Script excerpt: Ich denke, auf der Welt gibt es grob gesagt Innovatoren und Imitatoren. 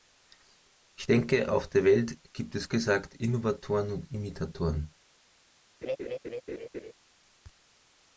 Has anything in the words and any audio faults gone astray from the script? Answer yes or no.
yes